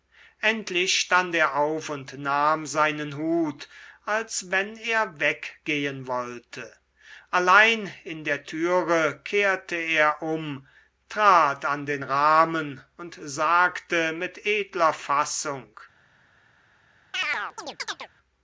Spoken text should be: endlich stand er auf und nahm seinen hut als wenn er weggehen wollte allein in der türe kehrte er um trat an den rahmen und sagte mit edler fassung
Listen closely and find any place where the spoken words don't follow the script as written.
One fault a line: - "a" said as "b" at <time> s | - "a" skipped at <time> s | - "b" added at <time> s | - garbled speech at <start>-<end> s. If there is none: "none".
none